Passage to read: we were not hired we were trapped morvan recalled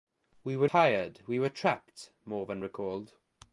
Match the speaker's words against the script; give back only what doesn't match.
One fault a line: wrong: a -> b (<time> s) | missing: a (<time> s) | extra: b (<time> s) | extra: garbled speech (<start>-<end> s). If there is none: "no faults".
missing: not (0.7 s)